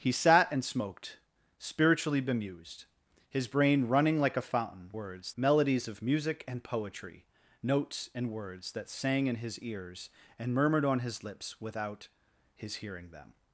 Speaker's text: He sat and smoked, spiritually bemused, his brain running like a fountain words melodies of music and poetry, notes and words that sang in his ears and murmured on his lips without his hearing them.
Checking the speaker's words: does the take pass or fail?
pass